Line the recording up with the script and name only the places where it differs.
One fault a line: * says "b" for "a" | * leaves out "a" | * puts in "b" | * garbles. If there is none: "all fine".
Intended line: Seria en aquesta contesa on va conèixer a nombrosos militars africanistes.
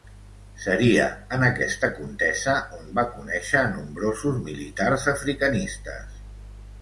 all fine